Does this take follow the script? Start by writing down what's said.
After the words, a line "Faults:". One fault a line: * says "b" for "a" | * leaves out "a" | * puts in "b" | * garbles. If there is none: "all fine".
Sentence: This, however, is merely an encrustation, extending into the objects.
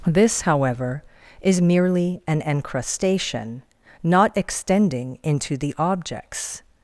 This, however, is merely an encrustation, not extending into the objects.
Faults:
* puts in "not"